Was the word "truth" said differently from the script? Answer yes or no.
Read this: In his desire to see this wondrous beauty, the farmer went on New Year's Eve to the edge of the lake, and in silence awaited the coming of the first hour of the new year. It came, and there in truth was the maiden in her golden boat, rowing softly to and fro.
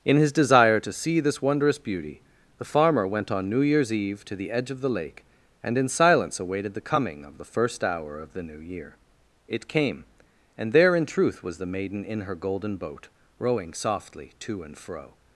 no